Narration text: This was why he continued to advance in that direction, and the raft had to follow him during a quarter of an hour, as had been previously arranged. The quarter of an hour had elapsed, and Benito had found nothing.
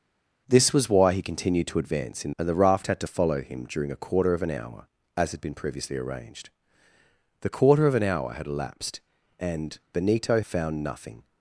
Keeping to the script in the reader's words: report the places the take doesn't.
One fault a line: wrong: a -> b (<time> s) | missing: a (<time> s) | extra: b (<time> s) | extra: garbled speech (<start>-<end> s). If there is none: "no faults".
missing: that direction (2.3 s)
missing: had (10.4 s)